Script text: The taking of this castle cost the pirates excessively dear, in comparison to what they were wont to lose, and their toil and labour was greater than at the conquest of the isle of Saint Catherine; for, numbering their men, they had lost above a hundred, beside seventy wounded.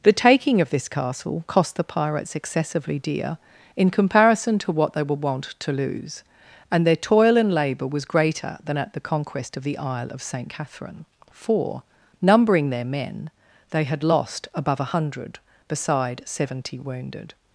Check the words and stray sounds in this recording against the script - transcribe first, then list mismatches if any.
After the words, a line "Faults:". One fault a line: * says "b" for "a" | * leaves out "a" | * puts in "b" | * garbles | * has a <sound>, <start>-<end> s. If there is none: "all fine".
The taking of this castle cost the pirates excessively dear, in comparison to what they were wont to lose, and their toil and labour was greater than at the conquest of the isle of Saint Catherine; for, numbering their men, they had lost above a hundred, beside seventy wounded.
Faults:
all fine